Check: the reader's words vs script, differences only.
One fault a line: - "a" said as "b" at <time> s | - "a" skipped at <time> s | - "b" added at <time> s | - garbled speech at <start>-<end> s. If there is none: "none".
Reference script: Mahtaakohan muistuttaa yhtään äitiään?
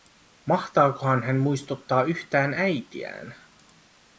- "hän" added at 1.2 s